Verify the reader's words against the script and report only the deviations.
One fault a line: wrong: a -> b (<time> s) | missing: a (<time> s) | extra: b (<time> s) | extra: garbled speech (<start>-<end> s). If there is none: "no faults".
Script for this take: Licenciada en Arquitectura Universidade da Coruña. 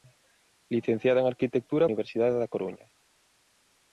no faults